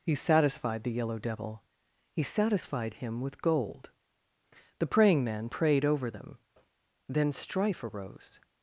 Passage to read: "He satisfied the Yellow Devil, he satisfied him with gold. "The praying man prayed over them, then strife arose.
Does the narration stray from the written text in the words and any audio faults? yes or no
no